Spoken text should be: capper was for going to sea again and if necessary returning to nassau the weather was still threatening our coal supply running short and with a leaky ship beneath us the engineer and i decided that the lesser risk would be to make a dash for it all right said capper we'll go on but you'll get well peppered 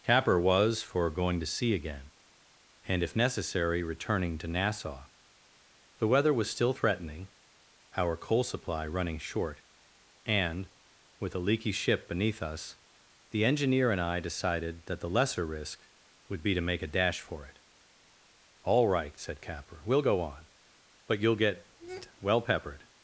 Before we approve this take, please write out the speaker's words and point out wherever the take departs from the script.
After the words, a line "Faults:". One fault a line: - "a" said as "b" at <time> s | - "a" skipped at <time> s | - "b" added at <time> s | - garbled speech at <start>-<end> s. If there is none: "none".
capper was for going to sea again and if necessary returning to nassau the weather was still threatening our coal supply running short and with a leaky ship beneath us the engineer and i decided that the lesser risk would be to make a dash for it all right said capper we'll go on but you'll get well peppered
Faults:
none